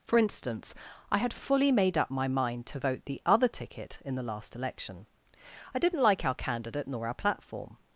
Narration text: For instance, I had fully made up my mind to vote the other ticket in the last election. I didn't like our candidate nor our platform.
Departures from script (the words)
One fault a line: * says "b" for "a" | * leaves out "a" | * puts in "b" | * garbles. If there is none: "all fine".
all fine